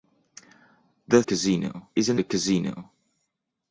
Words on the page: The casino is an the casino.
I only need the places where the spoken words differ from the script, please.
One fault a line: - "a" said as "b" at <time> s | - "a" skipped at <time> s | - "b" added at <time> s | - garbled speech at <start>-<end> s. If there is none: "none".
none